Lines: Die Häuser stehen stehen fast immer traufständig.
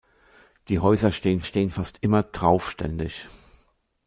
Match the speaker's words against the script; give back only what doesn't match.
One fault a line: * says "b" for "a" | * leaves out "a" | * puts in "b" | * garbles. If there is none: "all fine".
all fine